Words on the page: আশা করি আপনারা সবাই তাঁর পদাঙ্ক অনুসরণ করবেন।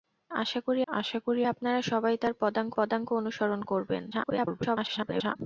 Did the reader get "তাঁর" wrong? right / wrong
right